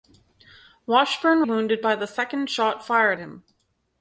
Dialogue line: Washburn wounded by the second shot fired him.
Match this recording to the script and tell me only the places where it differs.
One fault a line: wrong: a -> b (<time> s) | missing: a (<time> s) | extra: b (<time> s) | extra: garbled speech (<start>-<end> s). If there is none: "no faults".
no faults